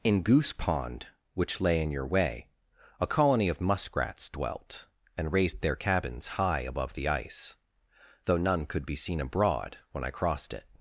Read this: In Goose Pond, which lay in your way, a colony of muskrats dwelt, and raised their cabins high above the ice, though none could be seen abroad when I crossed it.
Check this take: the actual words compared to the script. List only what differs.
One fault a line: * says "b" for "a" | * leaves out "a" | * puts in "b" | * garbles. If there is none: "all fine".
all fine